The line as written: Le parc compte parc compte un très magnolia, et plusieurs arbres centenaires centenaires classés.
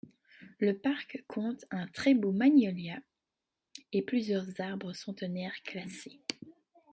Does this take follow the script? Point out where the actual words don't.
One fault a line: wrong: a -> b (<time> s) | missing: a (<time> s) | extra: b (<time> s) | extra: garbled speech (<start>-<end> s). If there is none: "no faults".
missing: parc compte (1.6 s)
extra: beau (2.1 s)
missing: centenaires (5.6 s)